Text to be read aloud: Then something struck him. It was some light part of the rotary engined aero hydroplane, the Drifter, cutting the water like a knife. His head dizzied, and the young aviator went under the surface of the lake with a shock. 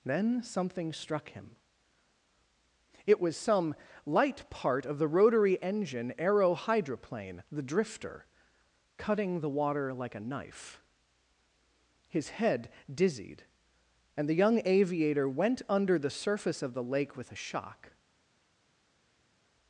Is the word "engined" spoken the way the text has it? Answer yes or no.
no